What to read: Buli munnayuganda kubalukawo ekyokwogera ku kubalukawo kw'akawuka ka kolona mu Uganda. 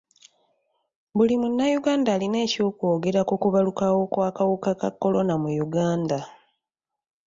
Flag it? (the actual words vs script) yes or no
yes